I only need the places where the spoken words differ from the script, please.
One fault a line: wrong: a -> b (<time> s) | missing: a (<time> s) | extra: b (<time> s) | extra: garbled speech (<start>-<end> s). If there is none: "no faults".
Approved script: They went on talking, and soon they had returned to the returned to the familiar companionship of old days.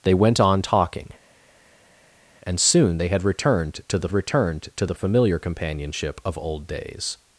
no faults